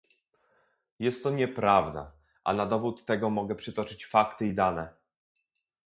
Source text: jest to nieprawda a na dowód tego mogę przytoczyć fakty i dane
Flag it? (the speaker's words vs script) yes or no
no